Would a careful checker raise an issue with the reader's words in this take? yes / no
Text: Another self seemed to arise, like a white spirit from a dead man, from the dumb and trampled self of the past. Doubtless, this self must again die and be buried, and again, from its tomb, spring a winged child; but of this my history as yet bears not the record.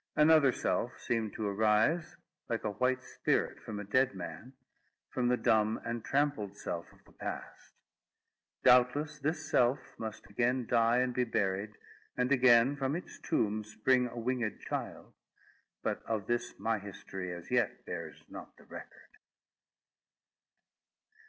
no